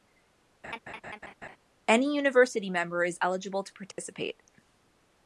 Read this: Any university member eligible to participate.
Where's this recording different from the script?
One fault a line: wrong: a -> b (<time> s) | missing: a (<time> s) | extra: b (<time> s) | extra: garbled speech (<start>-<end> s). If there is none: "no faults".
extra: is (3.0 s)